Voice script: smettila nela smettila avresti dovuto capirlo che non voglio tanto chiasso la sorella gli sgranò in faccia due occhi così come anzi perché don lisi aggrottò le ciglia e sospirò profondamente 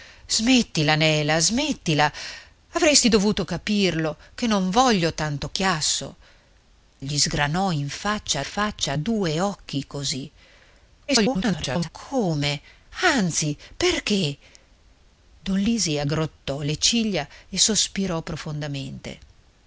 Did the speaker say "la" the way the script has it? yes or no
no